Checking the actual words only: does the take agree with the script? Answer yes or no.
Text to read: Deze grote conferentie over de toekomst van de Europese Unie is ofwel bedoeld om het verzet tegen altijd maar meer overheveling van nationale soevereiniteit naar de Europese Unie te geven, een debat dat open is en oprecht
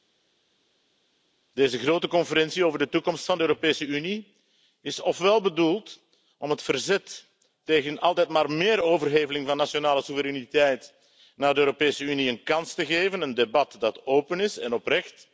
no